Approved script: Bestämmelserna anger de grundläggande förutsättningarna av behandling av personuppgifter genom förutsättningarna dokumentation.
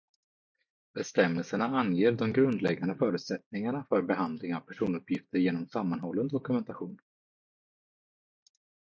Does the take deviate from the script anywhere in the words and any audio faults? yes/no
yes